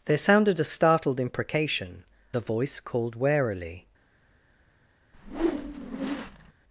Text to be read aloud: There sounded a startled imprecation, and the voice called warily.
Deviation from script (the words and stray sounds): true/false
true